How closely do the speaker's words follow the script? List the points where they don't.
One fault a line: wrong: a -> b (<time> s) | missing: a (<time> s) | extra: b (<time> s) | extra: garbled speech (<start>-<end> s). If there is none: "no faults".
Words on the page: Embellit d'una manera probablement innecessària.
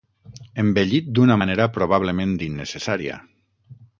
no faults